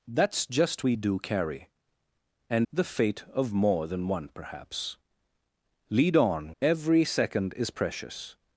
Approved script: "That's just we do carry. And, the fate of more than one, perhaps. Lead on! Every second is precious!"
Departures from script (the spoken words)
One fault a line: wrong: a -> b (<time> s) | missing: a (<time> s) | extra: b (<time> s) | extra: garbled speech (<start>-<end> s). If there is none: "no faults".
no faults